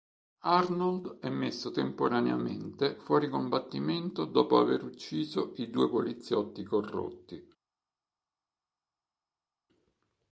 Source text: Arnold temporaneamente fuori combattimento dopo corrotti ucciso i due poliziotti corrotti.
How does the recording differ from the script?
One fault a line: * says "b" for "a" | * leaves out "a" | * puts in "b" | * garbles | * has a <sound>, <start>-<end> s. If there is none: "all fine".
* puts in "è messo"
* says "aver" for "corrotti"